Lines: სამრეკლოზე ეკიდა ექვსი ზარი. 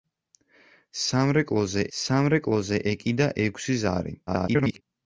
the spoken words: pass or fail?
fail